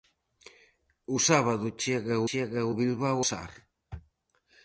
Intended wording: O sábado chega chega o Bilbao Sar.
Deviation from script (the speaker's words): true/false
false